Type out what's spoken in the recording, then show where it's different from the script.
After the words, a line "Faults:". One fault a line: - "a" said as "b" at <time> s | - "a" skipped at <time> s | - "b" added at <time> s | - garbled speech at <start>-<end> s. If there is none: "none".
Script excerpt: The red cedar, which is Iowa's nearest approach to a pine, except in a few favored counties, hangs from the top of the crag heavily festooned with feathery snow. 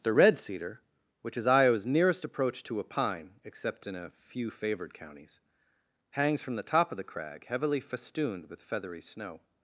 The red cedar, which is Iowa's nearest approach to a pine, except in a few favored counties, hangs from the top of the crag heavily festooned with feathery snow.
Faults:
none